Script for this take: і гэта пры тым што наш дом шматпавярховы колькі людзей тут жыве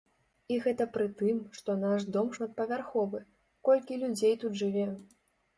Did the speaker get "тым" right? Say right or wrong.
right